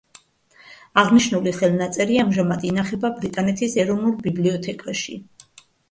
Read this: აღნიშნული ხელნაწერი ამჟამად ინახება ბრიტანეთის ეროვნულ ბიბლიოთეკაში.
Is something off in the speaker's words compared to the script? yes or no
no